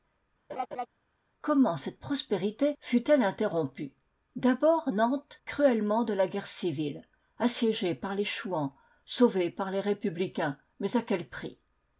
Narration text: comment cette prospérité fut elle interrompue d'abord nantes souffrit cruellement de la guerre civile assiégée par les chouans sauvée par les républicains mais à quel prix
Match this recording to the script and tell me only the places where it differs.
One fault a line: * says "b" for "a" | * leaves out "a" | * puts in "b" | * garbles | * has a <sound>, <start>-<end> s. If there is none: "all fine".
* has a laugh, 0.5-0.9 s
* leaves out "souffrit"